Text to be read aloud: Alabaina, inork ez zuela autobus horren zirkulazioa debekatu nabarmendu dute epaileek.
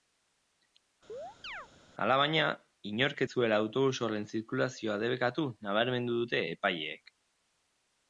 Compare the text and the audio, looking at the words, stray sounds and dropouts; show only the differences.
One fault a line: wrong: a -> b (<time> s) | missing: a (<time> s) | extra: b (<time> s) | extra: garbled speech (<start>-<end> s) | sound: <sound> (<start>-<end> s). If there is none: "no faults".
sound: chirp (1.1-1.7 s)